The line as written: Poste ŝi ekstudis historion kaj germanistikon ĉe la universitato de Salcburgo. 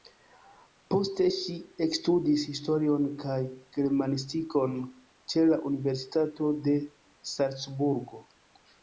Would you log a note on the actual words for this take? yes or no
no